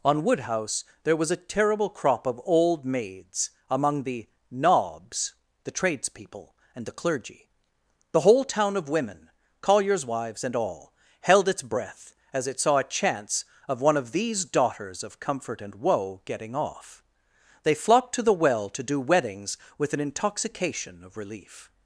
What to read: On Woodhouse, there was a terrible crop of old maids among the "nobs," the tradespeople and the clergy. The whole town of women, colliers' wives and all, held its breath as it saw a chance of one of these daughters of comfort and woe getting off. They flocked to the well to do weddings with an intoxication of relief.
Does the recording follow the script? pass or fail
pass